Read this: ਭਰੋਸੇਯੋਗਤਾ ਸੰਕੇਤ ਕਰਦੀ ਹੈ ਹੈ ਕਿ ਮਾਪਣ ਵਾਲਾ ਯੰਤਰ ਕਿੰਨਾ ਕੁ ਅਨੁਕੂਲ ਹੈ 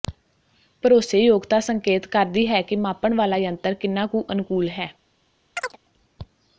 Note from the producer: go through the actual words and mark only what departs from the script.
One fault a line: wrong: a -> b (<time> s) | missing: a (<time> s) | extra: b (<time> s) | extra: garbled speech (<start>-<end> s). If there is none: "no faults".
missing: ਹੈ (2.6 s)